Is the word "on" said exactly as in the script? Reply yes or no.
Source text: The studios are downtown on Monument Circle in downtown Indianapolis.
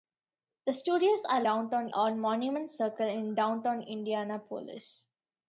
yes